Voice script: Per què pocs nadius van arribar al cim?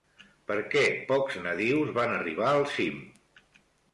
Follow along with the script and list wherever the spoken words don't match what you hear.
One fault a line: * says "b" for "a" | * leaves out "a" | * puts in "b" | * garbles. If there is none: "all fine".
all fine